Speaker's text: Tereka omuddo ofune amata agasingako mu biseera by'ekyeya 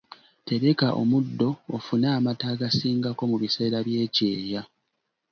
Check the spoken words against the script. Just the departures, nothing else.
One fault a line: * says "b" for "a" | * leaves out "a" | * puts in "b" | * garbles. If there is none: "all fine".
all fine